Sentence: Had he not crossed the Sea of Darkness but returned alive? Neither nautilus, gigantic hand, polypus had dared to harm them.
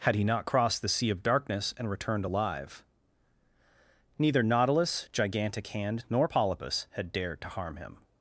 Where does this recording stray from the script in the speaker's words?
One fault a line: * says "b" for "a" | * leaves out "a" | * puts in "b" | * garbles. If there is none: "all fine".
* says "and" for "but"
* puts in "nor"
* says "him" for "them"